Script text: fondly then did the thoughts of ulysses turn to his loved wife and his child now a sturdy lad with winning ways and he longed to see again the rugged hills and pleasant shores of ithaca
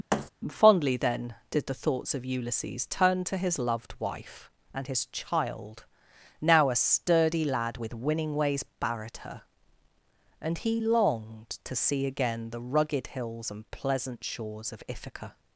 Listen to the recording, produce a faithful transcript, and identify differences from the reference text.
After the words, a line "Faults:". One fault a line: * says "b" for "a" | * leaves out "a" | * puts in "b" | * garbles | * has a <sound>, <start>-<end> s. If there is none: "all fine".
fondly then did the thoughts of ulysses turn to his loved wife and his child now a sturdy lad with winning ways barred her and he longed to see again the rugged hills and pleasant shores of ithaca
Faults:
* has a thud, 0.1-0.3 s
* puts in "barred her"